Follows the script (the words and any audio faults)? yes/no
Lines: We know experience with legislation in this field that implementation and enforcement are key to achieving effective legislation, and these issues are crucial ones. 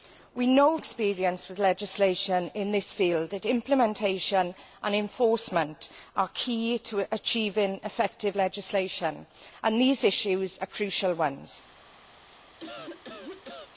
no